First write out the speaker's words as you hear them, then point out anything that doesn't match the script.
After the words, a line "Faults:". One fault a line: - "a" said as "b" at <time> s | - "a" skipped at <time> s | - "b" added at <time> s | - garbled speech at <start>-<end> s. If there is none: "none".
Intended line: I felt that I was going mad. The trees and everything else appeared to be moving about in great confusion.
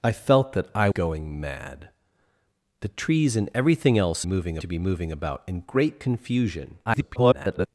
I felt that I going mad. The trees and everything else moving to be moving about in great confusion. [garbled]
Faults:
- "was" skipped at 0.9 s
- "appeared" said as "moving" at 4.2 s
- garbled speech at 6.8-7.7 s